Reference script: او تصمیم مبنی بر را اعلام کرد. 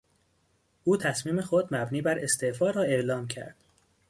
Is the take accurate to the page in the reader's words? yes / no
no